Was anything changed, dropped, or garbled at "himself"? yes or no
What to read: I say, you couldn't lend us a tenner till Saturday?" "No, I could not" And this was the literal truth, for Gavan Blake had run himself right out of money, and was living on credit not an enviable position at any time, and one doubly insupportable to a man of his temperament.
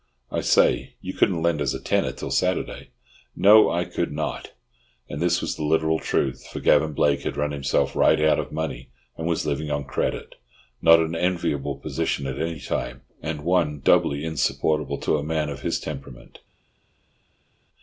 no